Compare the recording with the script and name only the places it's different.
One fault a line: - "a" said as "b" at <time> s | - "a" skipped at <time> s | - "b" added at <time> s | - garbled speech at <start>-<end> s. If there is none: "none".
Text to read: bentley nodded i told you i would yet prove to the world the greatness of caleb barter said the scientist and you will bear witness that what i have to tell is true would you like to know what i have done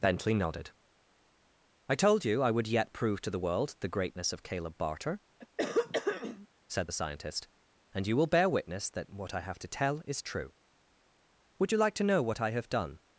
none